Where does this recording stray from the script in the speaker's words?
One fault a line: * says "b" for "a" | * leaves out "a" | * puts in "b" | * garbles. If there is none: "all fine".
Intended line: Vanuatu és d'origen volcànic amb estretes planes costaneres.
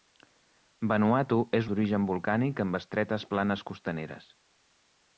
all fine